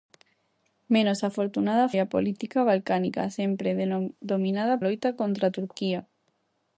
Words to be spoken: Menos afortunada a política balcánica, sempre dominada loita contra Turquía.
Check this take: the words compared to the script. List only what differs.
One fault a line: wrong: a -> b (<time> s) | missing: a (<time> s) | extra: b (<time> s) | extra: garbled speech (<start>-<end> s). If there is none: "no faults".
no faults